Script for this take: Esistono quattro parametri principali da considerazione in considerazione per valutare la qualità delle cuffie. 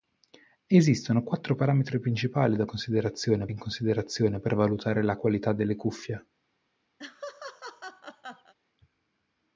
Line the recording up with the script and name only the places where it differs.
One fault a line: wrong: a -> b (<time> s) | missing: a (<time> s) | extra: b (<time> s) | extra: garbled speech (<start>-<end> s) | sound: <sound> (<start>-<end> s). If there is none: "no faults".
sound: laugh (7.0-8.5 s)